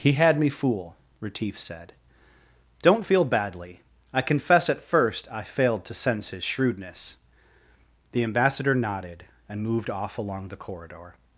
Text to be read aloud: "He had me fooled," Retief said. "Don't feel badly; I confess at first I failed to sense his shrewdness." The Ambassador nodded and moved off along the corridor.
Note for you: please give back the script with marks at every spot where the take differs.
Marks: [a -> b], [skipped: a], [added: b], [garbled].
"He had me [fooled," -> fool] Retief said. "Don't feel badly; I confess at first I failed to sense his shrewdness." The Ambassador nodded and moved off along the corridor.